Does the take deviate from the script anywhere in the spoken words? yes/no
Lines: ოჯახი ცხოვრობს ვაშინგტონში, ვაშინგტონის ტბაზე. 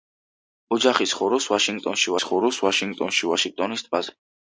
yes